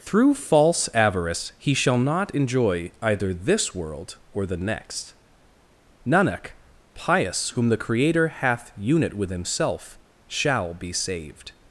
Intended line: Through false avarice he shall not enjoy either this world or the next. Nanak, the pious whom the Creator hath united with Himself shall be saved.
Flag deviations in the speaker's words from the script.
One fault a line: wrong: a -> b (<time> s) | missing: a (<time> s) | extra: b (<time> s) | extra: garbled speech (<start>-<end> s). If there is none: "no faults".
missing: the (6.5 s)
wrong: united -> unit (8.8 s)